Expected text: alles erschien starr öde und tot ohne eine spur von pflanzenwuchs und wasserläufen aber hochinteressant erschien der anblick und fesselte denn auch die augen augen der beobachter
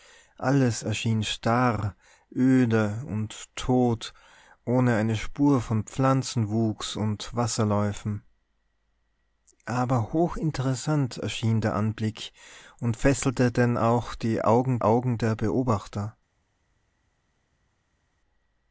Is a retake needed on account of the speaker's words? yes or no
no